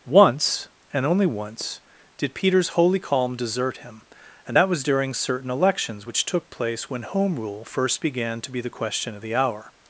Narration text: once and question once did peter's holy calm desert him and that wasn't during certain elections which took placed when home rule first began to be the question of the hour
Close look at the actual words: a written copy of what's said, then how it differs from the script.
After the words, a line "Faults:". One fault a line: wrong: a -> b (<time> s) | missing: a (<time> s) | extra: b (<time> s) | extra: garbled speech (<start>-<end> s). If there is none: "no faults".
once and only once did peter's holy calm desert him and that was during certain elections which took place when home rule first began to be the question of the hour
Faults:
wrong: question -> only (1.1 s)
wrong: wasn't -> was (4.7 s)
wrong: placed -> place (6.5 s)